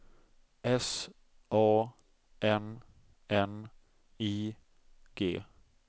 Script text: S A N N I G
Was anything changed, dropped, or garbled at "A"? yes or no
no